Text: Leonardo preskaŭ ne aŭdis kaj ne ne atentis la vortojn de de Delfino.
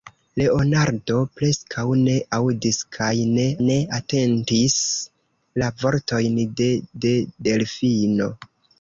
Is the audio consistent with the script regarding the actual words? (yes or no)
yes